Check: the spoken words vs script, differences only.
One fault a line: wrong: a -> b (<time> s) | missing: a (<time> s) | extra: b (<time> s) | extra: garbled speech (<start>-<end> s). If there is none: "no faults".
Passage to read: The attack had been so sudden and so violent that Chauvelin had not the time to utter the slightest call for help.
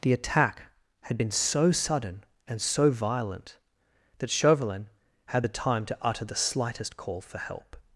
missing: not (5.4 s)